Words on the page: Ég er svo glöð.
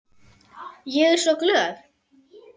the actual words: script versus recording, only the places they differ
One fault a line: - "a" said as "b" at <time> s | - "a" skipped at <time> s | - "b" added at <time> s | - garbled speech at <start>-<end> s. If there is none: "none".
none